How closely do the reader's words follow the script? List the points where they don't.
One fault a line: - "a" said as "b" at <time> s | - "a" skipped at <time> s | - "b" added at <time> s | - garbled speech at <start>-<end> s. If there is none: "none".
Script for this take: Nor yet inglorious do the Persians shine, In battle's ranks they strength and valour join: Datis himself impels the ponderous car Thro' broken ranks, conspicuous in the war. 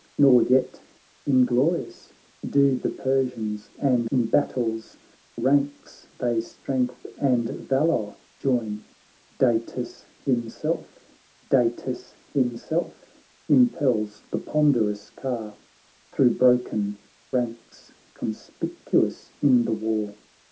- "shine" said as "and" at 3.8 s
- "Datis himself" added at 11.5 s